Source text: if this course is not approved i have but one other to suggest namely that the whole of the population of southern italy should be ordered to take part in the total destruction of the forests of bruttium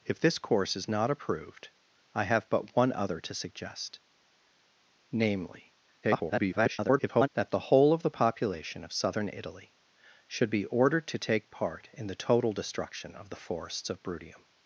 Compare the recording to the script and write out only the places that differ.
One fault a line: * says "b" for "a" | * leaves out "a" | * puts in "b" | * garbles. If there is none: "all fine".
* garbles